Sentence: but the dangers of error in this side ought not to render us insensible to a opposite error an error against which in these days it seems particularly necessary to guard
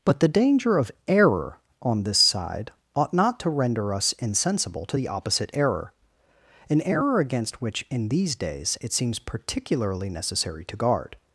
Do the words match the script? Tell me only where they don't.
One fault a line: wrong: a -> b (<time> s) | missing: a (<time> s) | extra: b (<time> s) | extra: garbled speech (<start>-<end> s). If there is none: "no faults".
wrong: dangers -> danger (0.3 s)
wrong: in -> on (1.8 s)
wrong: a -> the (5.0 s)